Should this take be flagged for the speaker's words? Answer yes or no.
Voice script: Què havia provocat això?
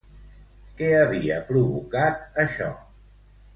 no